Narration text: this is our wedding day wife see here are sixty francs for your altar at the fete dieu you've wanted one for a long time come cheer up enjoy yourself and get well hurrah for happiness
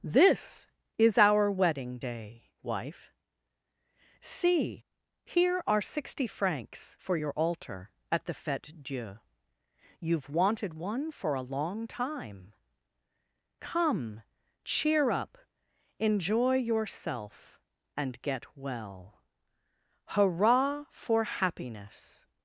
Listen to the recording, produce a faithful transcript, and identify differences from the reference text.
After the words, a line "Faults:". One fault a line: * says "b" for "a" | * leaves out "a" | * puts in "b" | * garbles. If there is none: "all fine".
this is our wedding day wife see here are sixty francs for your altar at the fete dieu you've wanted one for a long time come cheer up enjoy yourself and get well hurrah for happiness
Faults:
all fine